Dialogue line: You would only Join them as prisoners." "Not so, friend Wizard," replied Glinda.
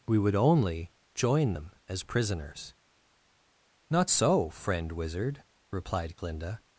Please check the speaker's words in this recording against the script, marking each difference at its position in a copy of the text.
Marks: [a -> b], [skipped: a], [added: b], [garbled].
[You -> We] would only Join them as prisoners." "Not so, friend Wizard," replied Glinda.